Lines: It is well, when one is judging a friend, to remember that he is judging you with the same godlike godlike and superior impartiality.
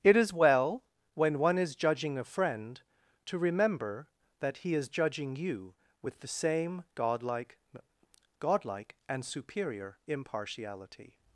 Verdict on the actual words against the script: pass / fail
pass